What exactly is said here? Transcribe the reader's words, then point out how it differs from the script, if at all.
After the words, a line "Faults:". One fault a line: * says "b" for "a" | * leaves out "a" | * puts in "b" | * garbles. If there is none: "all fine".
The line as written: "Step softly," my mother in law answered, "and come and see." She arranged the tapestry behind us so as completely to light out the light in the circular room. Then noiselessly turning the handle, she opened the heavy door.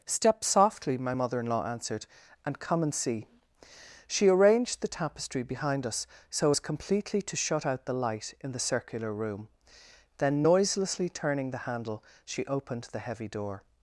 "Step softly," my mother in law answered, "and come and see." She arranged the tapestry behind us so as completely to shut out the light in the circular room. Then noiselessly turning the handle, she opened the heavy door.
Faults:
* says "shut" for "light"